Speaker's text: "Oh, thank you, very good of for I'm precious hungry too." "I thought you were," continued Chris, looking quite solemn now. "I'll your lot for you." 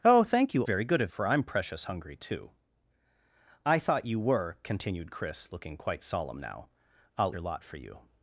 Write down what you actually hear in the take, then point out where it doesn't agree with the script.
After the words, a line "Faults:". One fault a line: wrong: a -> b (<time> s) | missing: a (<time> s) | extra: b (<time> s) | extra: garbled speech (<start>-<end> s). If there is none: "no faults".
"Oh, thank you, very good of for I'm precious hungry too." "I thought you were," continued Chris, looking quite solemn now. "I'll your lot for you."
Faults:
no faults